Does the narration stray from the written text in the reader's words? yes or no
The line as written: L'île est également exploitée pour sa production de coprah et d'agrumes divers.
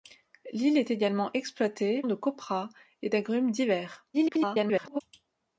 yes